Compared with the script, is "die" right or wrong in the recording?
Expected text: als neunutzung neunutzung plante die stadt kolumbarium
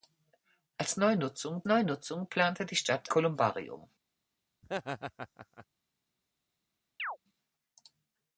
right